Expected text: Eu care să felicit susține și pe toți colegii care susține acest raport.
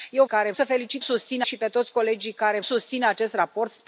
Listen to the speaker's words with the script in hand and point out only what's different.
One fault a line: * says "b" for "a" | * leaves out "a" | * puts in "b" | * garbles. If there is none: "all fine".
all fine